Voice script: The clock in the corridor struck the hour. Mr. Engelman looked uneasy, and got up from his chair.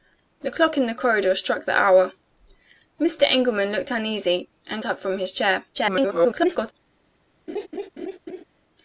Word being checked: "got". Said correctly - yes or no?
no